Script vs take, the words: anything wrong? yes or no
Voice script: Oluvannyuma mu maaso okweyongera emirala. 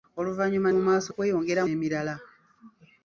no